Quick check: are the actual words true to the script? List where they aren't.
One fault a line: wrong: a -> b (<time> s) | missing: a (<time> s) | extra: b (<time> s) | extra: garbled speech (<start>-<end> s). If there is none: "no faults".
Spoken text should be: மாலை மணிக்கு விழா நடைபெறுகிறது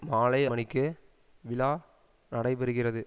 no faults